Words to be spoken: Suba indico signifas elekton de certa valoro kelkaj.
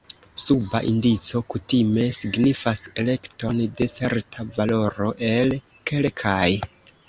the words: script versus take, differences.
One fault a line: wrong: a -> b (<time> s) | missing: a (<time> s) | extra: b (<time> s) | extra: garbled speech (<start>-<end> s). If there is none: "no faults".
extra: kutime (1.6 s)
extra: el (5.3 s)